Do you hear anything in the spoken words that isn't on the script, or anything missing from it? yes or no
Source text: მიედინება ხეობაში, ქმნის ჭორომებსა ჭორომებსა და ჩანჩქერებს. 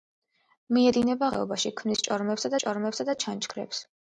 no